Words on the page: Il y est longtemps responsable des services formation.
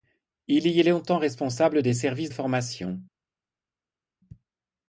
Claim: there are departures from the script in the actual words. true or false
false